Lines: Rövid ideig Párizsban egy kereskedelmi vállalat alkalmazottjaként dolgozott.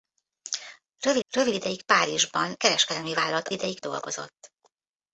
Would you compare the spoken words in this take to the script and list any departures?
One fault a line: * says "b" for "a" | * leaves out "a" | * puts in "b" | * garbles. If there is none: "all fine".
* puts in "rövid"
* leaves out "egy"
* says "ideig" for "alkalmazottjaként"